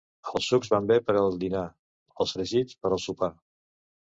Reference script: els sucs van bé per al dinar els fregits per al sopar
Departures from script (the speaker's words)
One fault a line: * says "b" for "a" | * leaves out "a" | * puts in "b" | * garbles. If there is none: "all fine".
all fine